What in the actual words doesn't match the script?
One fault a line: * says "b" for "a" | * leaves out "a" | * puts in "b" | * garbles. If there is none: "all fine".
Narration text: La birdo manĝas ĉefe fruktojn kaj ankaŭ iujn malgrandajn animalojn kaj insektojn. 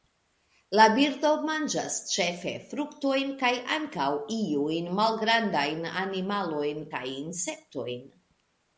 all fine